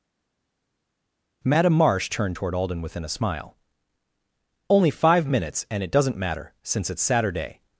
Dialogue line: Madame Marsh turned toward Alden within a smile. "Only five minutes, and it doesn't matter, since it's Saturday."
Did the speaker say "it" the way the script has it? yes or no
yes